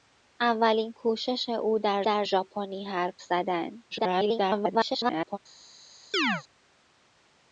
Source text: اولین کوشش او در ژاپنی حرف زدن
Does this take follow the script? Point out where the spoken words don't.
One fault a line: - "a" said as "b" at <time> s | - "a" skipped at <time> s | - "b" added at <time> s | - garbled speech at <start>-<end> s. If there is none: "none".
- "در" added at 2.0 s
- garbled speech at 3.9-5.4 s